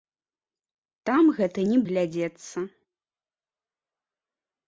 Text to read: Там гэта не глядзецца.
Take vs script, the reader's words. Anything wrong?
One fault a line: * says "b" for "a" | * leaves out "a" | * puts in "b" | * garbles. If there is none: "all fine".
all fine